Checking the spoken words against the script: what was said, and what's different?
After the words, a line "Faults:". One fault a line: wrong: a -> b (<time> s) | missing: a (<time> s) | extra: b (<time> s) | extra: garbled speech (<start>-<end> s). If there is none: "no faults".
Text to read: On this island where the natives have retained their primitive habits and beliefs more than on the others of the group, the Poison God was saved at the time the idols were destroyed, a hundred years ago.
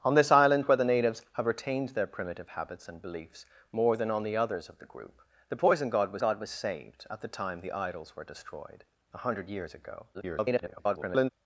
On this island where the natives have retained their primitive habits and beliefs more than on the others of the group, the Poison God was God was saved at the time the idols were destroyed, a hundred years ago. [garbled]
Faults:
extra: God was (6.2 s)
extra: garbled speech (10.1-11.3 s)